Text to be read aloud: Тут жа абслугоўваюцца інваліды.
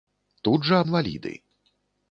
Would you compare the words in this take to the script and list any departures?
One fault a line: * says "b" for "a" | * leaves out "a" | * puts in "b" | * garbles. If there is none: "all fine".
* leaves out "абслугоўваюцца"